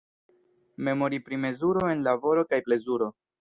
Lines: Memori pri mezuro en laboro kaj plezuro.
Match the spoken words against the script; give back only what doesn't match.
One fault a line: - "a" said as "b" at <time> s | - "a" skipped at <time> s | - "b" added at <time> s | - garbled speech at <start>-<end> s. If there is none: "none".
none